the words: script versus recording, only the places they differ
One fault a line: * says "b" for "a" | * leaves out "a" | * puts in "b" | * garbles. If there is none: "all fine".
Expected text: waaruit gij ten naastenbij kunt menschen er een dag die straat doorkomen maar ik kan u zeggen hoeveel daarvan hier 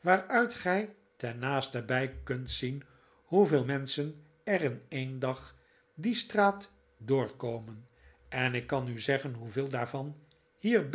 * puts in "zien hoeveel"
* puts in "in"
* says "en" for "maar"